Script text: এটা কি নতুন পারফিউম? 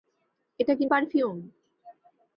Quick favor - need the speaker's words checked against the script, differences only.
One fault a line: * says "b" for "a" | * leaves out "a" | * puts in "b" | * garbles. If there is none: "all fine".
* leaves out "নতুন"